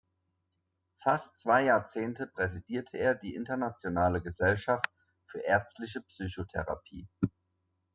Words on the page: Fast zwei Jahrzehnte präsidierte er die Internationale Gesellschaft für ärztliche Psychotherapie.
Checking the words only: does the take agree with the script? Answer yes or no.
yes